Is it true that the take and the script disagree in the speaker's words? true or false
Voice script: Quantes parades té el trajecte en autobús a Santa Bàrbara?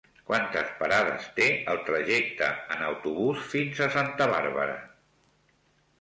true